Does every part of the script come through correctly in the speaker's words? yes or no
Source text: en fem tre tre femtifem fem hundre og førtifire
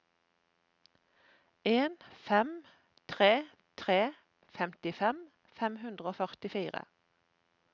yes